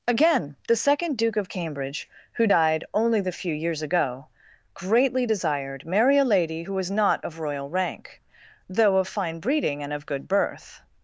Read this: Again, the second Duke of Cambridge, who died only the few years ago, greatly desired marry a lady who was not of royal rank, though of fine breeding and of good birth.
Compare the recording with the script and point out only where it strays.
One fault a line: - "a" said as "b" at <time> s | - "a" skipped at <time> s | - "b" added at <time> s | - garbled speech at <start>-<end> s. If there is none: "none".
none